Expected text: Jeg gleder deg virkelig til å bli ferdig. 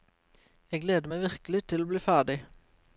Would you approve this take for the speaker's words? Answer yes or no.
no